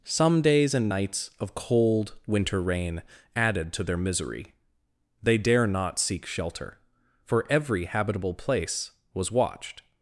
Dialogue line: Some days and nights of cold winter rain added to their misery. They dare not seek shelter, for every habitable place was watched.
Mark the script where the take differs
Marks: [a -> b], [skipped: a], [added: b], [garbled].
Some days and nights of cold winter rain added to their misery. They dare not seek shelter, for every habitable place was watched.